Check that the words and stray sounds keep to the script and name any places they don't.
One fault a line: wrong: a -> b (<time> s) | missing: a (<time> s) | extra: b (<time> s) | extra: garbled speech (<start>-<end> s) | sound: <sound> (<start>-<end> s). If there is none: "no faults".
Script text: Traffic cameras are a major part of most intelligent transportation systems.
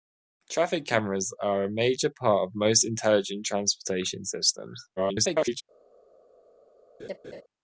extra: garbled speech (5.0-5.6 s)
sound: laugh (7.0-7.4 s)